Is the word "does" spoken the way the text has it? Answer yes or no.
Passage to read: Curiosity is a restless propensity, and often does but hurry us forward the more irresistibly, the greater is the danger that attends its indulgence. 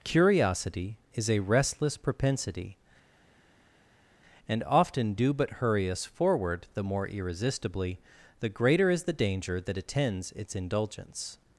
no